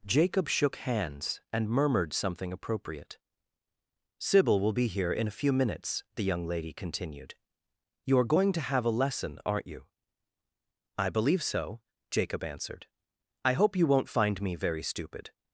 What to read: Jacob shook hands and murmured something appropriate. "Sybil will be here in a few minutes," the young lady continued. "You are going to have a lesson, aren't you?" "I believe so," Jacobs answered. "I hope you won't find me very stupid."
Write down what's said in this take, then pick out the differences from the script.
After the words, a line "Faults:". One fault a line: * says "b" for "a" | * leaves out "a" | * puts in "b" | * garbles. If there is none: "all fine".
Jacob shook hands and murmured something appropriate. "Sybil will be here in a few minutes," the young lady continued. "You are going to have a lesson, aren't you?" "I believe so," Jacob answered. "I hope you won't find me very stupid."
Faults:
* says "Jacob" for "Jacobs"